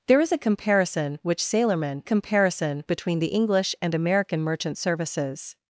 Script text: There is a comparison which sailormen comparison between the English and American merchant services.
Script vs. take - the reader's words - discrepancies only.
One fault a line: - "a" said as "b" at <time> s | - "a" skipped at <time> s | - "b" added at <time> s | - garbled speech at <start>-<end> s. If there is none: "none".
none